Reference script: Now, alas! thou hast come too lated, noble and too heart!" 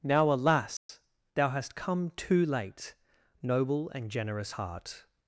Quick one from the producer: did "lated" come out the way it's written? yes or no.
no